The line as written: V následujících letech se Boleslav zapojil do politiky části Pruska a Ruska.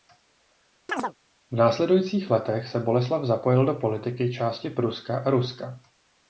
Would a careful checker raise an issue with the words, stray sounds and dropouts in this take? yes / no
yes